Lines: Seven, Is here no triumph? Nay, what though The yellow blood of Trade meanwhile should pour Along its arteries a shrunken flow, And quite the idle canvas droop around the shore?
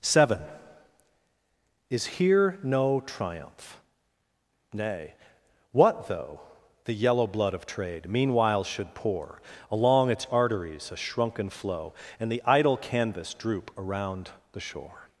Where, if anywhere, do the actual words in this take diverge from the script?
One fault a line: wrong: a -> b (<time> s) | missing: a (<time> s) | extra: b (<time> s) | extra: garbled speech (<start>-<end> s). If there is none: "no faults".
missing: quite (12.3 s)